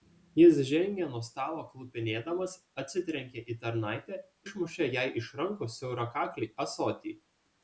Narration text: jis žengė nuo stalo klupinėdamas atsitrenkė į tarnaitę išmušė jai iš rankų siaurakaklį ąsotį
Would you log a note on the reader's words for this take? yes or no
no